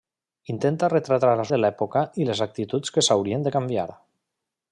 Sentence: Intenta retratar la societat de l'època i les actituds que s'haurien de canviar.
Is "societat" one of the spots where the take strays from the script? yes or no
yes